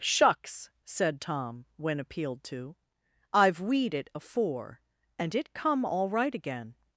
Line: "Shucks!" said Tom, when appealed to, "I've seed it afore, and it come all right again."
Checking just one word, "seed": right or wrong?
wrong